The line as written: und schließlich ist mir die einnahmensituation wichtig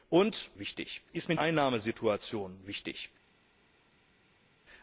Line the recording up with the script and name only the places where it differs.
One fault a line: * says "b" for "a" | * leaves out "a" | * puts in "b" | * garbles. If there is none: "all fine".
* says "wichtig" for "schließlich"
* leaves out "die"